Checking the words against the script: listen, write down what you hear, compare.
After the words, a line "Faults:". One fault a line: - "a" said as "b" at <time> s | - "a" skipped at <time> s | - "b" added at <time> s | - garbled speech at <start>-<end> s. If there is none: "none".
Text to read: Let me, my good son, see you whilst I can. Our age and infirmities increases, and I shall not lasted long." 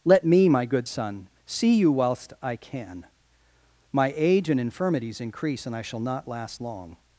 Let me, my good son, see you whilst I can. My age and infirmities increase, and I shall not last long."
Faults:
- "Our" said as "My" at 3.9 s
- "increases" said as "increase" at 5.2 s
- "lasted" said as "last" at 6.3 s